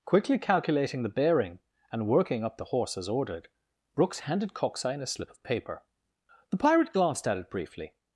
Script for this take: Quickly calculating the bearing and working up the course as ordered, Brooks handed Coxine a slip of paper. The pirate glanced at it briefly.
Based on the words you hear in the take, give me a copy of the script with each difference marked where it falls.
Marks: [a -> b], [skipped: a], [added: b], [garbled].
Quickly calculating the bearing and working up the [course -> horse] as ordered, Brooks handed Coxine a slip of paper. The pirate glanced at it briefly.